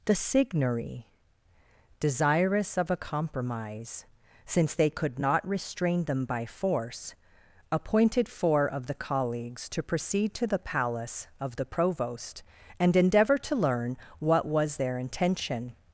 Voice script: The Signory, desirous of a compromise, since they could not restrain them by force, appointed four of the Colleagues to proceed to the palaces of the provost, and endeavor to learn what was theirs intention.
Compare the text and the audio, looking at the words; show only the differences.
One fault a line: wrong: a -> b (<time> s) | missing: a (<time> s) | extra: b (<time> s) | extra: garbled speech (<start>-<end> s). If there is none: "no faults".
wrong: palaces -> palace (10.6 s)
wrong: theirs -> their (14.8 s)